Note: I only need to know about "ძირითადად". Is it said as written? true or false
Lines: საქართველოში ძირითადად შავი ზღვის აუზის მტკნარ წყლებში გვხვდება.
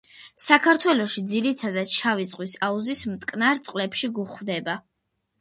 true